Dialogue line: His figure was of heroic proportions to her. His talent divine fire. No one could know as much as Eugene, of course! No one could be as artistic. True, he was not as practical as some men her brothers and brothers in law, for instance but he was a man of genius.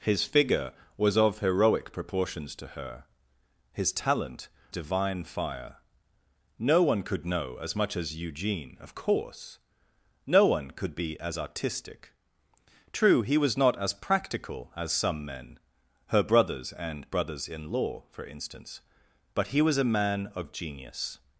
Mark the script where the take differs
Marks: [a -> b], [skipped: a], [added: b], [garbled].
His figure was of heroic proportions to her. His talent divine fire. No one could know as much as Eugene, of course! No one could be as artistic. True, he was not as practical as some men her brothers and brothers in law, for instance but he was a man of genius.